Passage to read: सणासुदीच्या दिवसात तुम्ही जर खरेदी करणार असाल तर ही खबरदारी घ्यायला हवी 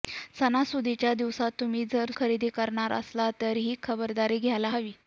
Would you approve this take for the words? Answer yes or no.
yes